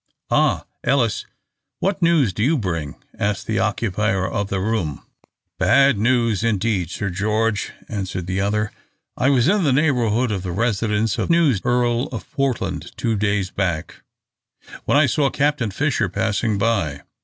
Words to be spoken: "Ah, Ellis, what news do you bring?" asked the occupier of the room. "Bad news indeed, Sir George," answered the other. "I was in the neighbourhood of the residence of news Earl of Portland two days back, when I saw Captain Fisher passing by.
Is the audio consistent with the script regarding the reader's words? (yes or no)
yes